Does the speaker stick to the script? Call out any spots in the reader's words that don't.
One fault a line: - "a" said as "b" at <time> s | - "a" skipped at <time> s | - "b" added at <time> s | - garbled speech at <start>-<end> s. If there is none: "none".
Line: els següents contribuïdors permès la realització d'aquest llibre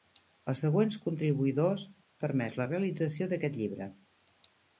none